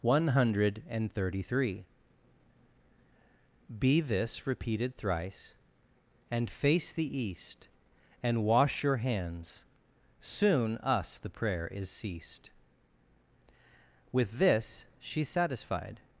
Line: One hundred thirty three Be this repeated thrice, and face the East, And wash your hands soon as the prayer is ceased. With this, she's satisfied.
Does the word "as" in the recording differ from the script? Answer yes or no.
yes